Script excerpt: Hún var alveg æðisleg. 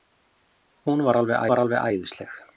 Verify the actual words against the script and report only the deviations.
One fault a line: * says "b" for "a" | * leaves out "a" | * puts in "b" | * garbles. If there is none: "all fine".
* puts in "var alveg"